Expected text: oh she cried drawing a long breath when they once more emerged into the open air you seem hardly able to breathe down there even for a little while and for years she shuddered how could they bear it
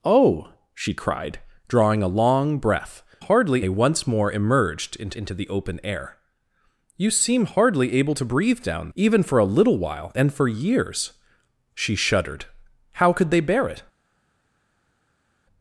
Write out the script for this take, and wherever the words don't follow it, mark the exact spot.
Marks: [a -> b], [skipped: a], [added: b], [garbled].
oh she cried drawing a long breath [when -> hardly] they once more emerged into [added: into] the open air you seem hardly able to breathe down [skipped: there] even for a little while and for years she shuddered how could they bear it